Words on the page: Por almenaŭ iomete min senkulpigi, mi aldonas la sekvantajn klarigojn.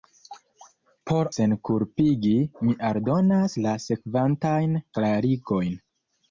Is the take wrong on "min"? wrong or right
wrong